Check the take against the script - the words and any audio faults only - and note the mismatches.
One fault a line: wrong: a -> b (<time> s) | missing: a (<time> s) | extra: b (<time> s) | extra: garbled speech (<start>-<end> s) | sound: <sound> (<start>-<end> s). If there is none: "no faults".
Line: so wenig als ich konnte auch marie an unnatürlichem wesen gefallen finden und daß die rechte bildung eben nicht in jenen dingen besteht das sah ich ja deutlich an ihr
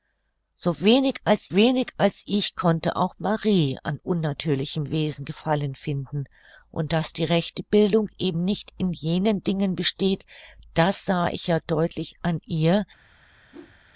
extra: wenig als (1.5 s)
sound: whoosh (13.5-13.8 s)